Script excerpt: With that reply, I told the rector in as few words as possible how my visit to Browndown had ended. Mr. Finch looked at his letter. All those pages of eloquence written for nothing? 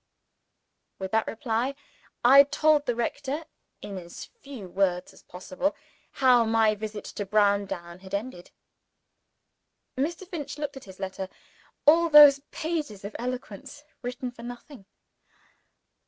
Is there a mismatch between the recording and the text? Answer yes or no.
no